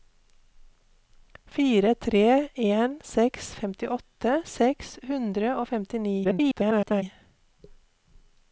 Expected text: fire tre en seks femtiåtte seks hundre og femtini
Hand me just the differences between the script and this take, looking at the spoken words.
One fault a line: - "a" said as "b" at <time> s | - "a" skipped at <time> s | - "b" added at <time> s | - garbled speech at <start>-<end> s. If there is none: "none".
- garbled speech at 6.2-7.0 s